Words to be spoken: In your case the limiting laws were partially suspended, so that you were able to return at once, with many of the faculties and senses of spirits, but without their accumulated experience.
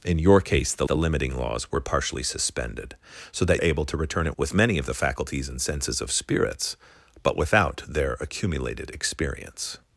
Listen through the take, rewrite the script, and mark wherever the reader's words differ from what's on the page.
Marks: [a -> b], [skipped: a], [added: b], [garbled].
In your case the [added: the] limiting laws were partially suspended, so that [skipped: you were] able to return at [skipped: once,] with many of the faculties and senses of spirits, but without their accumulated experience.